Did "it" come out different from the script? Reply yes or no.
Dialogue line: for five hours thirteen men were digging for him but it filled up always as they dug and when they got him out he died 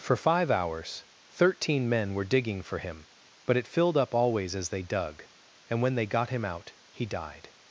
no